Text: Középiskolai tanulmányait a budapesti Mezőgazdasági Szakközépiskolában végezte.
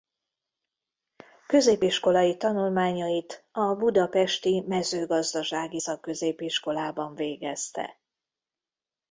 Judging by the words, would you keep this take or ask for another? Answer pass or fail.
pass